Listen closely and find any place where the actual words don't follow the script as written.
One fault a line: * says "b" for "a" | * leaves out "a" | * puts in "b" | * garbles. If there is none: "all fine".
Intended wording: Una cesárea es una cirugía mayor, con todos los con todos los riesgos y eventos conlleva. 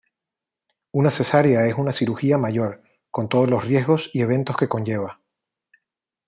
* leaves out "con todos los"
* puts in "que"